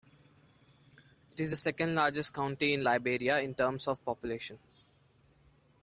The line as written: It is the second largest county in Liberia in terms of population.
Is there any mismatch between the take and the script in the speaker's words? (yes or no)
no